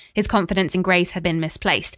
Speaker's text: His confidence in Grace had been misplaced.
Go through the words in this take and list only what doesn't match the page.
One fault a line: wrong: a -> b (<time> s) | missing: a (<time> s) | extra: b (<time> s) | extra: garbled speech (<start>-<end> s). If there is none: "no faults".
no faults